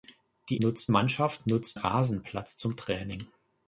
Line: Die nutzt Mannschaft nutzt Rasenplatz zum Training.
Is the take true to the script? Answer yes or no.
yes